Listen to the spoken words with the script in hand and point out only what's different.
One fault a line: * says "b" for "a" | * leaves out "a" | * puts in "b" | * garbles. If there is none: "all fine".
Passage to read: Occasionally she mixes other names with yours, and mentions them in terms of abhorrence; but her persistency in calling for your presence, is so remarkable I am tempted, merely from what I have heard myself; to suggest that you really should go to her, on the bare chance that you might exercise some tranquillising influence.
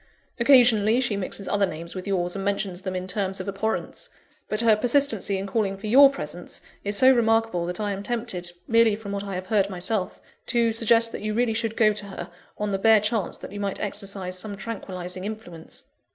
* puts in "that"